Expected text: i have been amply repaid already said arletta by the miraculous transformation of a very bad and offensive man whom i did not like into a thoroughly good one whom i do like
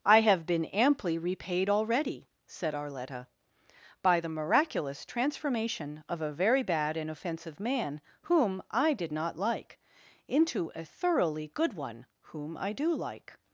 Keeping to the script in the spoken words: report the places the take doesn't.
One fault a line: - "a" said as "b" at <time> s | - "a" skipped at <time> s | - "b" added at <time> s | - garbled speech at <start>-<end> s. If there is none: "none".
none